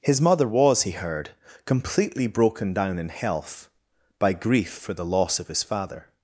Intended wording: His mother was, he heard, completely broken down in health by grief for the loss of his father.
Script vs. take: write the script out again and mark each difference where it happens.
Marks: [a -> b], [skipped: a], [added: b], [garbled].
His mother was, he heard, completely broken down in health by grief for the loss of his father.